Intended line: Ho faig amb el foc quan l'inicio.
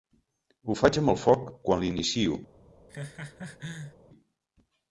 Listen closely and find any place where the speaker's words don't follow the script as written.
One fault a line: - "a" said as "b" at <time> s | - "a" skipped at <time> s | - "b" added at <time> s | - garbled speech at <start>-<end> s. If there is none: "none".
none